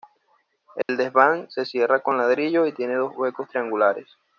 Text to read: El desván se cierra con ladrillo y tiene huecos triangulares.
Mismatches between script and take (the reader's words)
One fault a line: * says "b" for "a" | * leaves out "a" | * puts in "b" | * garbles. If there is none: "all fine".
* puts in "dos"